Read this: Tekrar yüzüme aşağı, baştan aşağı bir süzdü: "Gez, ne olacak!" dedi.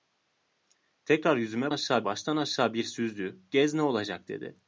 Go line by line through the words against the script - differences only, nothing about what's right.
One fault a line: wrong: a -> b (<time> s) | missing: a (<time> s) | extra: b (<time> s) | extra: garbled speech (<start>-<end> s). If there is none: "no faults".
no faults